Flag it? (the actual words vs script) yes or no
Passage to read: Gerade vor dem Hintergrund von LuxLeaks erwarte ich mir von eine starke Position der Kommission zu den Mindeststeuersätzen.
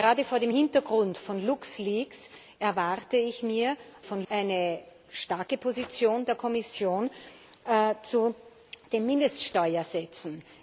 no